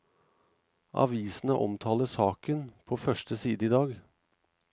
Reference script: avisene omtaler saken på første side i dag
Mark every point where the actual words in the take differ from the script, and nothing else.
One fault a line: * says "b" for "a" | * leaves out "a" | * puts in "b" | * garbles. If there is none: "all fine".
all fine